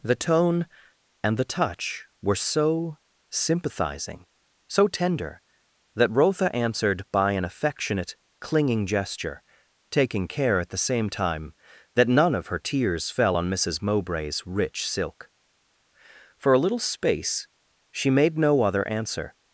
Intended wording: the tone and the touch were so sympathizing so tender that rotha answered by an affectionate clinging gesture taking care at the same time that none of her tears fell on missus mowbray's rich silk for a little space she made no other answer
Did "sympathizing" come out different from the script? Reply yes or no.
no